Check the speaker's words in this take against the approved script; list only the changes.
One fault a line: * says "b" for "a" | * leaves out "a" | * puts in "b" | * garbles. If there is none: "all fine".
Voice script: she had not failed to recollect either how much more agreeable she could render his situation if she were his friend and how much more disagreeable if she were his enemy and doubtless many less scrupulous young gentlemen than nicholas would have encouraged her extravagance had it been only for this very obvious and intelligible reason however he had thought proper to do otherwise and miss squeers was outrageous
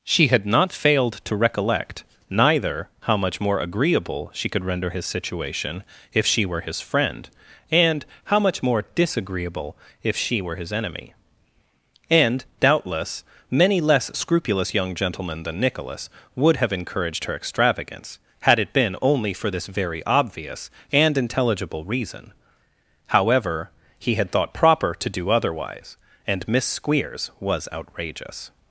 * says "neither" for "either"